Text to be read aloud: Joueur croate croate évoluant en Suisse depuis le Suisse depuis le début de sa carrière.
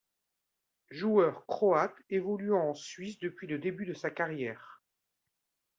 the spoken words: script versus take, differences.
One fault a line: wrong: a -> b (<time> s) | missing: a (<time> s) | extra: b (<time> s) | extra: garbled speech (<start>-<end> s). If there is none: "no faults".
missing: croate (1.9 s)
missing: Suisse depuis le (3.6 s)